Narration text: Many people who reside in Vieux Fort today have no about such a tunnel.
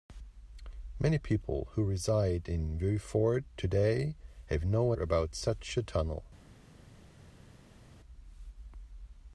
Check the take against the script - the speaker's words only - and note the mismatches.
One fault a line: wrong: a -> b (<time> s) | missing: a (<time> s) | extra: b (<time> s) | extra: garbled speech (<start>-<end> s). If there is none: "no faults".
no faults